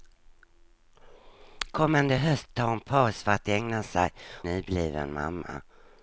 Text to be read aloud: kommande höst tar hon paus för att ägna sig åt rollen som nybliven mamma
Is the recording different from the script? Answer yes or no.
yes